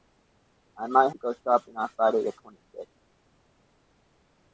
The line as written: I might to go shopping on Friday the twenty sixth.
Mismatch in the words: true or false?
false